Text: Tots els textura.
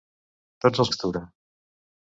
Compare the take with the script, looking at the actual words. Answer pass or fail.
pass